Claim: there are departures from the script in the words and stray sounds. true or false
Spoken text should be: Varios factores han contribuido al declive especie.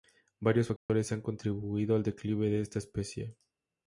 true